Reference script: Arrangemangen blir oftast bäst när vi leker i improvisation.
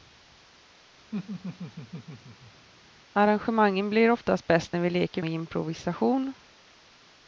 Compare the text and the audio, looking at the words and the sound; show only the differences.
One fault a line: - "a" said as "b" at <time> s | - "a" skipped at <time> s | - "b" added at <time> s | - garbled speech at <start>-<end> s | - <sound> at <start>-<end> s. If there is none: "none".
- laugh at 1.1-2.7 s